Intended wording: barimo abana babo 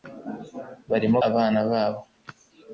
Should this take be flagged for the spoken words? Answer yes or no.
no